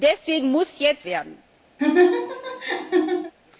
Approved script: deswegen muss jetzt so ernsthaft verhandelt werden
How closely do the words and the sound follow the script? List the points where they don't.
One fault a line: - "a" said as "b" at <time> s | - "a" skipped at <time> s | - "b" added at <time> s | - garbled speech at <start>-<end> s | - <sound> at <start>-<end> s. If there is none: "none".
- "so ernsthaft verhandelt" skipped at 1.1 s
- laugh at 1.8-3.3 s